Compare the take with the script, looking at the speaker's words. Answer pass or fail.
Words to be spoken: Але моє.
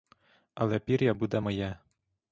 fail